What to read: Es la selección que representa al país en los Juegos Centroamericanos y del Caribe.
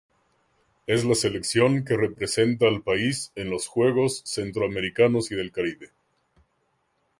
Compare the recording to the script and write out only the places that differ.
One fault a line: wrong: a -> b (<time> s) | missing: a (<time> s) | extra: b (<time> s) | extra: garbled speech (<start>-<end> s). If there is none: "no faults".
no faults